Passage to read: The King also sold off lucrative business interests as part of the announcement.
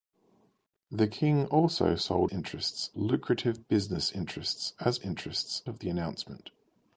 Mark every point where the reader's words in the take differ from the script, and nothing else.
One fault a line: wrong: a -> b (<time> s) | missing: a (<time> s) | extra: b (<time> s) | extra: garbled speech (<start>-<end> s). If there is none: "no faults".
wrong: off -> interests (2.3 s)
wrong: part -> interests (5.0 s)